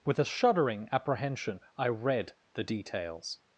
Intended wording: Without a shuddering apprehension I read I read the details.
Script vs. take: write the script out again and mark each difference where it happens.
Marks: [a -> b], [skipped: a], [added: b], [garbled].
[Without -> With] a shuddering apprehension I read [skipped: I read] the details.